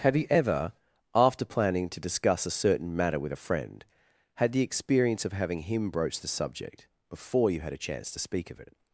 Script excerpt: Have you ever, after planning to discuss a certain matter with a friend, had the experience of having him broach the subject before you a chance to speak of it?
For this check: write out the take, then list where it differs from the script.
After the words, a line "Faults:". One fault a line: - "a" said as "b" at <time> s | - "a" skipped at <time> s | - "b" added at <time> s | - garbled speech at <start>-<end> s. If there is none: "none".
Have you ever, after planning to discuss a certain matter with a friend, had the experience of having him broach the subject before you had a chance to speak of it?
Faults:
- "had" added at 7.6 s